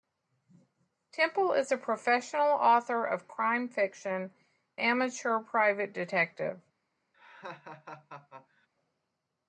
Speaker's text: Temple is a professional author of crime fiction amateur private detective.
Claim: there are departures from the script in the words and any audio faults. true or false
true